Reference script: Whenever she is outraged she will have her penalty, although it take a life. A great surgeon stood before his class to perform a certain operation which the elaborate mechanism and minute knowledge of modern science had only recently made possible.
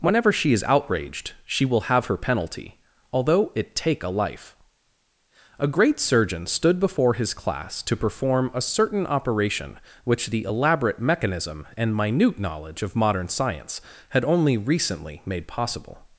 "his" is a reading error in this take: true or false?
false